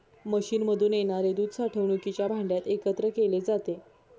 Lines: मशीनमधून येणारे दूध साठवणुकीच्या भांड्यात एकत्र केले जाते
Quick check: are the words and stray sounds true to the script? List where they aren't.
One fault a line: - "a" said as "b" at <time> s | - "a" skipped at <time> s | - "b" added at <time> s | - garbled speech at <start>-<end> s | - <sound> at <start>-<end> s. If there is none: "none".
none